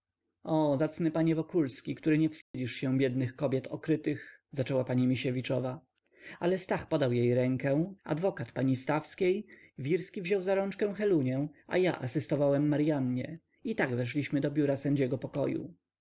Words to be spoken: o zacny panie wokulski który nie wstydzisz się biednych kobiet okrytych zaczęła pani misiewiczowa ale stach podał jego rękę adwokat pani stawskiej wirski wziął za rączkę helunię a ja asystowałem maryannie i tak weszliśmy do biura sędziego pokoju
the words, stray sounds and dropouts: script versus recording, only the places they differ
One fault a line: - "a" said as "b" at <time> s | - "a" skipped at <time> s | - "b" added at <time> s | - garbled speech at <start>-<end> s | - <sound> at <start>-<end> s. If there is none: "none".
- dropout at 2.4-2.5 s
- "jego" said as "jej" at 7.1 s